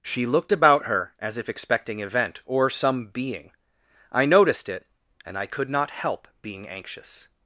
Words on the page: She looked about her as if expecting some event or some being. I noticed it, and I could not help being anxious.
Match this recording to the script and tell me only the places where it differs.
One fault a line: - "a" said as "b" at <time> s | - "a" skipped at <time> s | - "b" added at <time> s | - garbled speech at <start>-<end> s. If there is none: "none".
- "some" skipped at 2.0 s